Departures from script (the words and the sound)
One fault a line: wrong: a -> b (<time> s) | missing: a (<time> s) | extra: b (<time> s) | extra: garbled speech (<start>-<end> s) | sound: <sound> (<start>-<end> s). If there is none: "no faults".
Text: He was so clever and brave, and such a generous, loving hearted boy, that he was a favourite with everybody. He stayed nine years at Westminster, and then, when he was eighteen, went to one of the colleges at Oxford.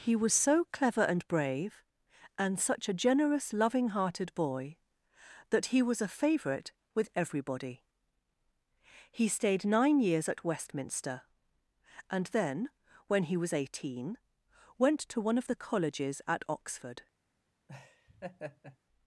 sound: laugh (17.7-18.8 s)